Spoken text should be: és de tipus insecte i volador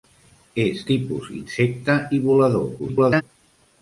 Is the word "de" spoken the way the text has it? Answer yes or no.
no